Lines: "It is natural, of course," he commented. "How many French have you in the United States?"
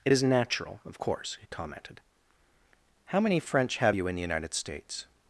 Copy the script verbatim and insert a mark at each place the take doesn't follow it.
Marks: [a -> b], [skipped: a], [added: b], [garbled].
"It is natural, of course," he commented. "How many French have you in the United States?"